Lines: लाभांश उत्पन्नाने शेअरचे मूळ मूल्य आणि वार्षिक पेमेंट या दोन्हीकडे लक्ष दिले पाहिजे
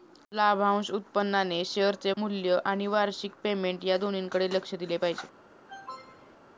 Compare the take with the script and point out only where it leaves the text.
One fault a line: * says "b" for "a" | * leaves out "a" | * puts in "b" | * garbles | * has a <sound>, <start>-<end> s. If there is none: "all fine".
* leaves out "मूळ"
* has a cough, 5.7-6.4 s